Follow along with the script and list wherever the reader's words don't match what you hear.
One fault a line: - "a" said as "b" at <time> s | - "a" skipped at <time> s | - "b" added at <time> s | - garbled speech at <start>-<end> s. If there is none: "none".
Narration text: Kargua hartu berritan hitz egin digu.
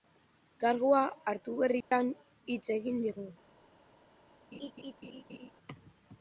none